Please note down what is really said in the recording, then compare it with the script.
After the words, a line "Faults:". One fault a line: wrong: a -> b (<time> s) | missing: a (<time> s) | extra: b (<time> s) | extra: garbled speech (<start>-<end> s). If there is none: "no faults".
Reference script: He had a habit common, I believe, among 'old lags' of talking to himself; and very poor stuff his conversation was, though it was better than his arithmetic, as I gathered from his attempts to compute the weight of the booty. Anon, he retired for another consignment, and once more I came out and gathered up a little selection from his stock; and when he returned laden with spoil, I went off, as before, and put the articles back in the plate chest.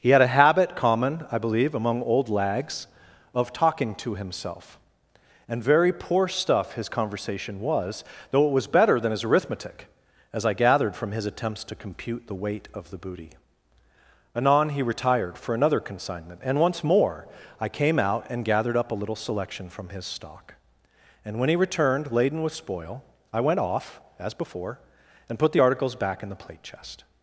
He had a habit common, I believe, among 'old lags' of talking to himself; and very poor stuff his conversation was, though it was better than his arithmetic, as I gathered from his attempts to compute the weight of the booty. Anon, he retired for another consignment, and once more I came out and gathered up a little selection from his stock; and when he returned laden with spoil, I went off, as before, and put the articles back in the plate chest.
Faults:
no faults